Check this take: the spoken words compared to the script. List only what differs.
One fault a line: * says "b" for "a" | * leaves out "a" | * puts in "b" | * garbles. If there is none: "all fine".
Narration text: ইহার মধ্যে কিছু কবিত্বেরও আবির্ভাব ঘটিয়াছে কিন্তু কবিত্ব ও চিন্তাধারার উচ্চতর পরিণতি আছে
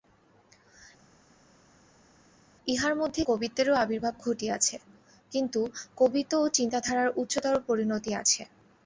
* leaves out "কিছু"